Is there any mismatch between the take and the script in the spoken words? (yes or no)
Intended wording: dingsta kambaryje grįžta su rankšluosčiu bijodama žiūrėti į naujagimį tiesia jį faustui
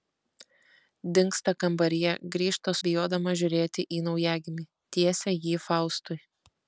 yes